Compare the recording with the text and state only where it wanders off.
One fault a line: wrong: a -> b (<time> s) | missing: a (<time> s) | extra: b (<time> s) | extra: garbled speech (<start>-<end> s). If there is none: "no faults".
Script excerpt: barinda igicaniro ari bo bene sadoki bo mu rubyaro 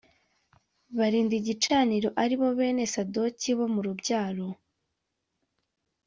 no faults